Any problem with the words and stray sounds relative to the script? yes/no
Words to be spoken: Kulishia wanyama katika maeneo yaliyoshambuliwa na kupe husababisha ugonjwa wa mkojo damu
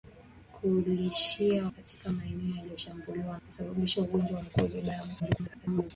yes